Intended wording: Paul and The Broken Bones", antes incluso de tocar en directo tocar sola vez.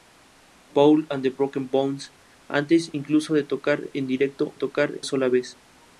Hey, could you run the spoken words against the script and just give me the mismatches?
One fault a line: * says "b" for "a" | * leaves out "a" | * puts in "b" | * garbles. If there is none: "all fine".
all fine